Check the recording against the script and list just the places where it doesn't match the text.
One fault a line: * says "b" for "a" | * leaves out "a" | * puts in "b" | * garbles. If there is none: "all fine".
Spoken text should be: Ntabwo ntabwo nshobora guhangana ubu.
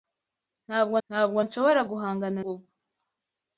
all fine